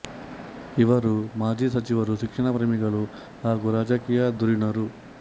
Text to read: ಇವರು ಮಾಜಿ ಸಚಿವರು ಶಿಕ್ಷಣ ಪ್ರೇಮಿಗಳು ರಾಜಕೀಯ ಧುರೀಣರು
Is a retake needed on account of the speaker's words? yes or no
yes